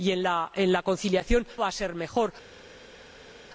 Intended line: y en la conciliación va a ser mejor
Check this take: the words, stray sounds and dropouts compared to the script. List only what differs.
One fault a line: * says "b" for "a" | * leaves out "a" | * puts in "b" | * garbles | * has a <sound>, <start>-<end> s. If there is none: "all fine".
all fine